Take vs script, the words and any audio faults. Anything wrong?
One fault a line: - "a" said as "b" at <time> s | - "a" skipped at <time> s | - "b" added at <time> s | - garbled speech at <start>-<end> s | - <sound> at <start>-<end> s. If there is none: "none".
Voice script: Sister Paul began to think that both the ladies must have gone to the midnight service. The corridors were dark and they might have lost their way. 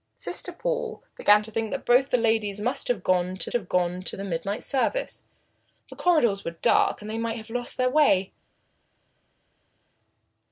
- "have gone to" added at 3.5 s